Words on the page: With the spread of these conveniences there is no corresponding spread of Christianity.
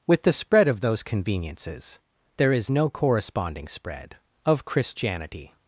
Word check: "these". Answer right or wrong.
wrong